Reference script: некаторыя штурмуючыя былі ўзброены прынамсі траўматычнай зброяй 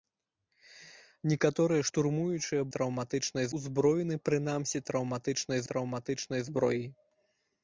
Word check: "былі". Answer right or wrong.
wrong